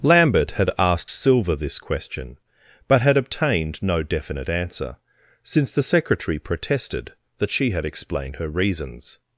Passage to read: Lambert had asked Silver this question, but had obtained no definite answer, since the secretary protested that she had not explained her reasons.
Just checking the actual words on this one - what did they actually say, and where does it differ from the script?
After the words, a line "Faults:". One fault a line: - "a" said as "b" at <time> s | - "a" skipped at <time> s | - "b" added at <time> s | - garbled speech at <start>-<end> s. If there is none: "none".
Lambert had asked Silver this question, but had obtained no definite answer, since the secretary protested that she had explained her reasons.
Faults:
- "not" skipped at 7.8 s